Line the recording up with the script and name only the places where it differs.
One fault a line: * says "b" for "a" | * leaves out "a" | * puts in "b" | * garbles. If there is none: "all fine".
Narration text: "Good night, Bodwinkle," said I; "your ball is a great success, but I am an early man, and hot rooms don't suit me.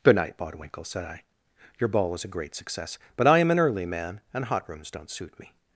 * says "was" for "is"